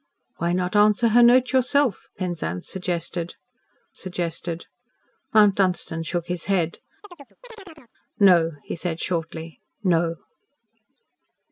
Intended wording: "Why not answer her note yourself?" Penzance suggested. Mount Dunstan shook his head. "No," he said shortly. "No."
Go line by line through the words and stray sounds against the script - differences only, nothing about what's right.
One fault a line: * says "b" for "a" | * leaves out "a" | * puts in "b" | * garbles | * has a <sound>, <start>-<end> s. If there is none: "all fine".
* puts in "suggested"
* has a chirp, 7.0-7.9 s